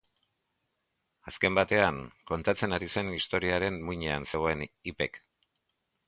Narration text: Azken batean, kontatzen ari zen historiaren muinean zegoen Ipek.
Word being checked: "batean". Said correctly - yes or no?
yes